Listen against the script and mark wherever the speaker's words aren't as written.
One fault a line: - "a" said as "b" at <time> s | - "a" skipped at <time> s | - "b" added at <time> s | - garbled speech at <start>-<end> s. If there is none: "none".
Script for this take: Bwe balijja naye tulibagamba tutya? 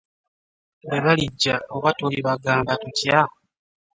- "naye" said as "oba" at 1.8 s